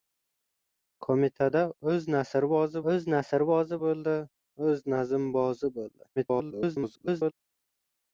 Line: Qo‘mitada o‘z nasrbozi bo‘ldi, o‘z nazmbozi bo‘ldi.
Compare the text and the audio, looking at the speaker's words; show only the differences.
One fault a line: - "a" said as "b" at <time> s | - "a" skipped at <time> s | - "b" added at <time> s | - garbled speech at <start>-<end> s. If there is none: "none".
- "o‘z nasrbozi" added at 2.9 s
- garbled speech at 6.2-7.3 s